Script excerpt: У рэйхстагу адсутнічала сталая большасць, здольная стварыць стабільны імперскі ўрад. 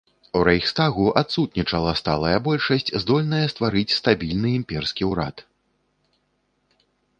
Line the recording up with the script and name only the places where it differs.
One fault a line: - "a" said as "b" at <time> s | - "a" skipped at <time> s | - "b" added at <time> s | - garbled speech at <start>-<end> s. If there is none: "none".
none